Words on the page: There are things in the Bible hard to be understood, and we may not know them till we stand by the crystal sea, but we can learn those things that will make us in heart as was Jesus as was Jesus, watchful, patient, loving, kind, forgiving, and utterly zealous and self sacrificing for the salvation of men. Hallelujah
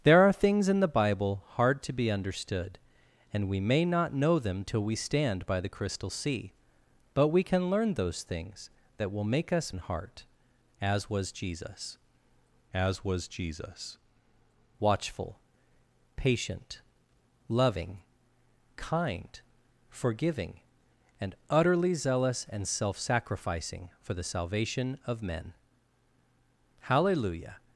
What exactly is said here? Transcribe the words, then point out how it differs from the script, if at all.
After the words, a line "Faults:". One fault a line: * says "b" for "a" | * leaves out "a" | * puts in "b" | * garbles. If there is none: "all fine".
There are things in the Bible hard to be understood, and we may not know them till we stand by the crystal sea, but we can learn those things that will make us in heart as was Jesus as was Jesus, watchful, patient, loving, kind, forgiving, and utterly zealous and self sacrificing for the salvation of men. Hallelujah
Faults:
all fine